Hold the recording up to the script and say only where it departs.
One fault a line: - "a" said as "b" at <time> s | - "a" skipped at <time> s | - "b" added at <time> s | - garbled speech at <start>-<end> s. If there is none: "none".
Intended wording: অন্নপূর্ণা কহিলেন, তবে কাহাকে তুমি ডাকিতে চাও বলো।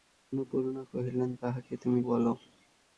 - "তবে" skipped at 1.3 s
- "ডাকিতে চাও" skipped at 2.0 s